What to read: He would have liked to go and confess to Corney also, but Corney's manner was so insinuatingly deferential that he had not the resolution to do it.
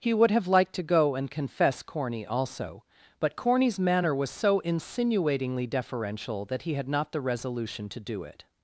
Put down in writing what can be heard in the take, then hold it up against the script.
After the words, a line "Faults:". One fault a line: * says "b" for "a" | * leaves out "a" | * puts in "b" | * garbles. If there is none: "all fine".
He would have liked to go and confess Corney also, but Corney's manner was so insinuatingly deferential that he had not the resolution to do it.
Faults:
* leaves out "to"